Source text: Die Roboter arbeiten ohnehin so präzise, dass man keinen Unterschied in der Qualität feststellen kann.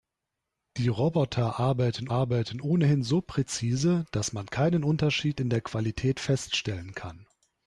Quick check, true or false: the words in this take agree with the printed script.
false